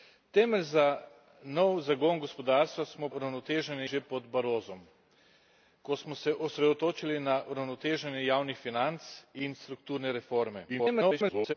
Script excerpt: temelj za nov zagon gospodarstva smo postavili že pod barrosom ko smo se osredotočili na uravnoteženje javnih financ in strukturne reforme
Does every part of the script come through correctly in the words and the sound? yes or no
no